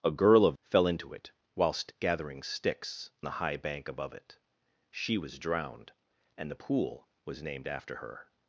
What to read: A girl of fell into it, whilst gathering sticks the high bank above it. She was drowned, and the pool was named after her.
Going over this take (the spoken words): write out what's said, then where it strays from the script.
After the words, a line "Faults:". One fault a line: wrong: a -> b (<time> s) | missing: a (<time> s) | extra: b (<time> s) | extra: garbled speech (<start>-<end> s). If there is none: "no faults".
A girl of fell into it, whilst gathering sticks the high bank above it. She was drowned, and the pool was named after her.
Faults:
no faults